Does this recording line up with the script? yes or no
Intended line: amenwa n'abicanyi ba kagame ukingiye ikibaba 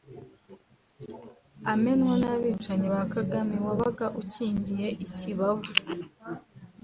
no